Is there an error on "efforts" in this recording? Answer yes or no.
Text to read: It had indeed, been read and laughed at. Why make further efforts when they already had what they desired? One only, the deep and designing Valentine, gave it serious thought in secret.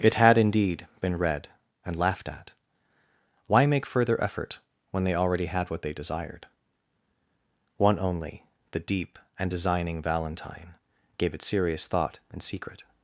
yes